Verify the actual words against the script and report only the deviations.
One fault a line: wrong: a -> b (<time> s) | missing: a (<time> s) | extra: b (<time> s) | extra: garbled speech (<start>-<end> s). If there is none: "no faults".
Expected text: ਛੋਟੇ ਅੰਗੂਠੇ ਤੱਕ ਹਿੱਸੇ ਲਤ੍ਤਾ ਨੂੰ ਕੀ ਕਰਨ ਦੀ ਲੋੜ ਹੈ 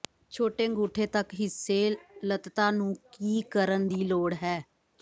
no faults